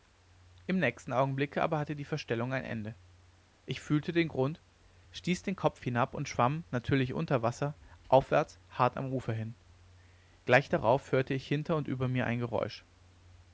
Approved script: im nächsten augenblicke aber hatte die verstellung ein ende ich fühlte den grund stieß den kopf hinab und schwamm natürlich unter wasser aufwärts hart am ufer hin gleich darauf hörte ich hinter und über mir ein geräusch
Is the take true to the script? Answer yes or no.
yes